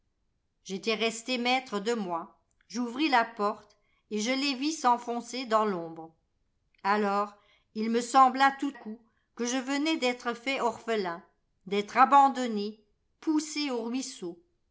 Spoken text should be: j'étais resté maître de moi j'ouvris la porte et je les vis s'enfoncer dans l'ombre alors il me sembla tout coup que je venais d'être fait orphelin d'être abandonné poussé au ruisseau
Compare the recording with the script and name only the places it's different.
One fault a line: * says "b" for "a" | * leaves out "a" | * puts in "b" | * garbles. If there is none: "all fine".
all fine